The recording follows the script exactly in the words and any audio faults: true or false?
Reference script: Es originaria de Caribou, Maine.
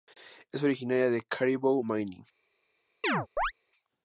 false